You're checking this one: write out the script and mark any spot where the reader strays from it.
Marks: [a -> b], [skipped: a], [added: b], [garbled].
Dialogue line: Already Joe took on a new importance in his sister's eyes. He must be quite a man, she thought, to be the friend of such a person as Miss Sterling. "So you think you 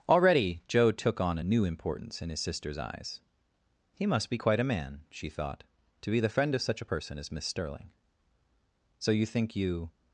Already Joe took on a new importance in his sister's eyes. He must be quite a man, she thought, to be the friend of such a person as Miss Sterling. "So you think you